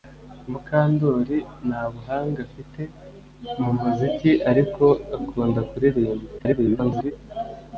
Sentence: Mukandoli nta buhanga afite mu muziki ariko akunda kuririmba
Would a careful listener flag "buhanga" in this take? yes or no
no